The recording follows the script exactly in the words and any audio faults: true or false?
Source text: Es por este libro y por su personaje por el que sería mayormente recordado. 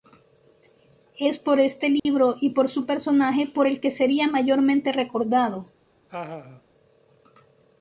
false